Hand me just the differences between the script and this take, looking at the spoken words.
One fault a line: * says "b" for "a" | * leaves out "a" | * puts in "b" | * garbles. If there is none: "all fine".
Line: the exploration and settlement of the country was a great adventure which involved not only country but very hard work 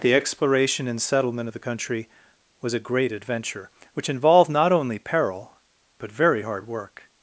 * says "peril" for "country"